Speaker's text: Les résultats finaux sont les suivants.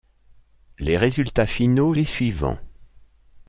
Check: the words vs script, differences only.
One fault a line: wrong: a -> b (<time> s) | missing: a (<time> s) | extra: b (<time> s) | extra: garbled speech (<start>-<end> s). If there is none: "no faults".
missing: sont (1.9 s)